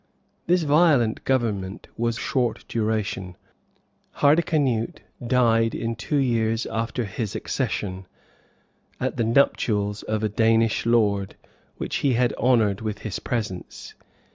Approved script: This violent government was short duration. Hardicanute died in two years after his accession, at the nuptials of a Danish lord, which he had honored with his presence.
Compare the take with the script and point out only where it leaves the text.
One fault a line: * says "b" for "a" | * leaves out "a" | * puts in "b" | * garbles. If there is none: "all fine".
all fine